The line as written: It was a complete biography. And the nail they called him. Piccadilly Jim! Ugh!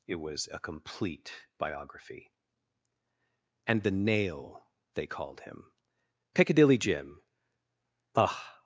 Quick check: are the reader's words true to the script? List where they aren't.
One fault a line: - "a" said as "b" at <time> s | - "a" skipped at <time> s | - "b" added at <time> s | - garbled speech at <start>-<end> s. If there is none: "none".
none